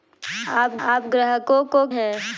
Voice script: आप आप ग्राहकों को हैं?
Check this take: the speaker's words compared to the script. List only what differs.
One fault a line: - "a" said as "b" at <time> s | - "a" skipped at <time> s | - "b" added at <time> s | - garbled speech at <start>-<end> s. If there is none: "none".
none